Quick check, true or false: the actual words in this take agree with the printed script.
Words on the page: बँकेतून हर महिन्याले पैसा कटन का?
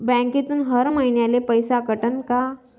true